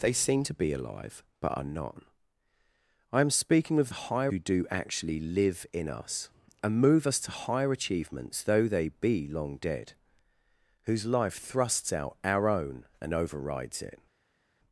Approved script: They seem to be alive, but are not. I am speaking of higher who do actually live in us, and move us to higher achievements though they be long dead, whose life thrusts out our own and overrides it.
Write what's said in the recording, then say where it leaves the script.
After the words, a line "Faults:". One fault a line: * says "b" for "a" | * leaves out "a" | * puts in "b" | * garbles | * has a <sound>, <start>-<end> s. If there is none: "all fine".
They seem to be alive, but are not. I am speaking of higher who do actually live in us, and move us to higher achievements though they be long dead, whose life thrusts out our own and overrides it.
Faults:
all fine